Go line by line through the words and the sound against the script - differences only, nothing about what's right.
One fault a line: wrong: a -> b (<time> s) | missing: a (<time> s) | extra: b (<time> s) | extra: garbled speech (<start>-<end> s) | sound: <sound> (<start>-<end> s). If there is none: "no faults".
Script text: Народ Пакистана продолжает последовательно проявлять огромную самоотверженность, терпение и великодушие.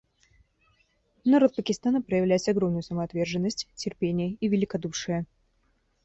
missing: продолжает последовательно (2.0 s)